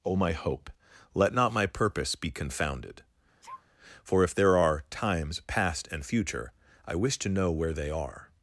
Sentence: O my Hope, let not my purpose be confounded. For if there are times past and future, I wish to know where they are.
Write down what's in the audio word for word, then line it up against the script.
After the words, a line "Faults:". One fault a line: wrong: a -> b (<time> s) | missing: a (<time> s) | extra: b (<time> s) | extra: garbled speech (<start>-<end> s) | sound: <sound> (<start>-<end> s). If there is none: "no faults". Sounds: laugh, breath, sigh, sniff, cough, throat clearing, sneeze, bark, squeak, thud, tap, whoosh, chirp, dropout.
O my Hope, let not my purpose be confounded. For if there are times past and future, I wish to know where they are.
Faults:
sound: sneeze (3.4-3.6 s)